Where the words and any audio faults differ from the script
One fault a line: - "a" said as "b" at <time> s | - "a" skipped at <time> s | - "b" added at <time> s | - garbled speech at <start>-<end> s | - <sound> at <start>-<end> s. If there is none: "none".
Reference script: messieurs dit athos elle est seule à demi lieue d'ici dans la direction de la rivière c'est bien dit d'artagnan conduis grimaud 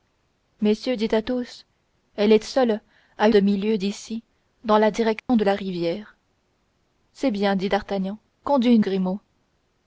- dropout at 5.2-5.3 s